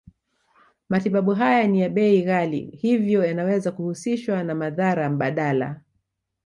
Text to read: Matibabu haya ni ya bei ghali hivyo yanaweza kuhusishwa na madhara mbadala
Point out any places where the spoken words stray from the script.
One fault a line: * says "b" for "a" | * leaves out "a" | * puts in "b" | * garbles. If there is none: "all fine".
all fine